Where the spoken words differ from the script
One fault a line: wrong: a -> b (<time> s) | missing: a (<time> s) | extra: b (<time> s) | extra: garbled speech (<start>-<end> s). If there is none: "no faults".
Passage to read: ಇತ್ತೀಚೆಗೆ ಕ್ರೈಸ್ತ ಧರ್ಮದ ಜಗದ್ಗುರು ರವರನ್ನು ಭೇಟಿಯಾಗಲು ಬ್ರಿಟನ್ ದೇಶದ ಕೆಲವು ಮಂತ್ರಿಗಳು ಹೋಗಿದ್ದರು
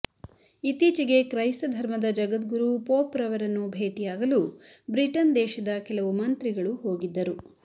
extra: ಪೋಪ್ (2.9 s)